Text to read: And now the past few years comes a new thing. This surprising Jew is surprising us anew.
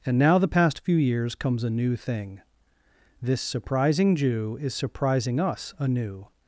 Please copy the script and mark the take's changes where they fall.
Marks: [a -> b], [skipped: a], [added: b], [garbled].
And now the past few years comes a new thing. This surprising Jew is surprising us anew.